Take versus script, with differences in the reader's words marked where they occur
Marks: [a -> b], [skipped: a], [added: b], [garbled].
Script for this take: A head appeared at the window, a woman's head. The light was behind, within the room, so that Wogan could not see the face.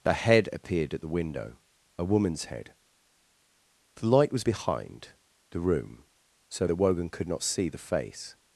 A head appeared at the window, a woman's head. The light was behind, [skipped: within] the room, so that Wogan could not see the face.